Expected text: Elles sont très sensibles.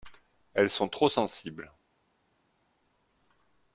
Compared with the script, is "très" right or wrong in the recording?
wrong